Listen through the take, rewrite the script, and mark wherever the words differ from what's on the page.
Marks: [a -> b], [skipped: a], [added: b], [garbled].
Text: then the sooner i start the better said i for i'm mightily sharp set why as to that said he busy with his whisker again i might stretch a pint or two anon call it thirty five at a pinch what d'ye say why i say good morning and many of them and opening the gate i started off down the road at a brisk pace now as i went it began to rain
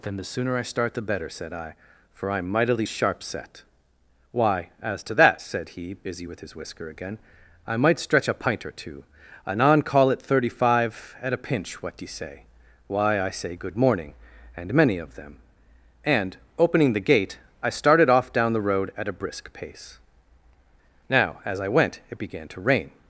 then the sooner i start the better said i for i'm mightily sharp set why as to that said he busy with his whisker again i might stretch a pint or two anon call it thirty five at a pinch what d'ye say why i say good morning and many of them and opening the gate i started off down the road at a brisk pace now as i went it began to rain